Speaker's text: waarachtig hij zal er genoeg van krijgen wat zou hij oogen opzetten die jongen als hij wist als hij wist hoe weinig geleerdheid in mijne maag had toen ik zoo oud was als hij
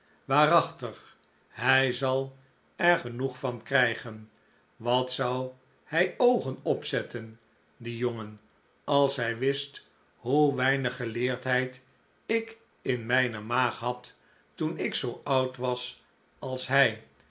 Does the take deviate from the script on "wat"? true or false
false